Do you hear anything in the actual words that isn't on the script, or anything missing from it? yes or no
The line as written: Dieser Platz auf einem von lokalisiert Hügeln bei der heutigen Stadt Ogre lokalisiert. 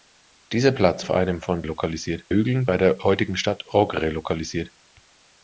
no